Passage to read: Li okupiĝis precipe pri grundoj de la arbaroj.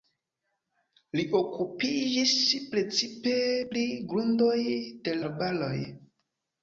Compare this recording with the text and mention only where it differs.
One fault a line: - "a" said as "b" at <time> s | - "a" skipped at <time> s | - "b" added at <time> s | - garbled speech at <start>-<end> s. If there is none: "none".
- "la" skipped at 5.2 s